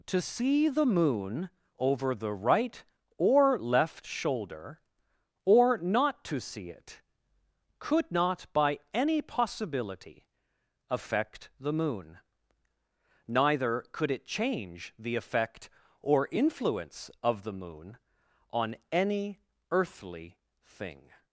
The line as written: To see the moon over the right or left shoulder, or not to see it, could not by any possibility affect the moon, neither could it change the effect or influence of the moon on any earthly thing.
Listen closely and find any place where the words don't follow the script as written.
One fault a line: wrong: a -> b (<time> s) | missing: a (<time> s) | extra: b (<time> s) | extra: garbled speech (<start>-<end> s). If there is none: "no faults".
no faults